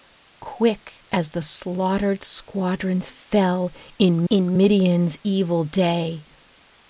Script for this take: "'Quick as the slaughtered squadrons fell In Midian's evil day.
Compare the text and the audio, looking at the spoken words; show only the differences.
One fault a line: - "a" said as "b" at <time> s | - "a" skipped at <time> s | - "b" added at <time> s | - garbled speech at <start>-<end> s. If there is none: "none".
- "In" added at 4.3 s